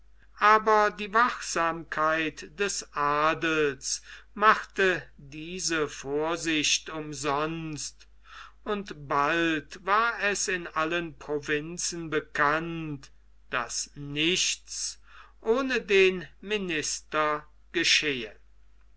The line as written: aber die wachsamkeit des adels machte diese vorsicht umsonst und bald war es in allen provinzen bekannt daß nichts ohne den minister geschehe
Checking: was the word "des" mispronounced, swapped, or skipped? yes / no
no